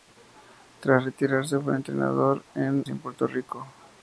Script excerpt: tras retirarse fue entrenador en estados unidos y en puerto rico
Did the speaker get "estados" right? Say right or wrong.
wrong